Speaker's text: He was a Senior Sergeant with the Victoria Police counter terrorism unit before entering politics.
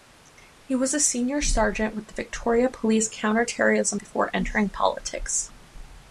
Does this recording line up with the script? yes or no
no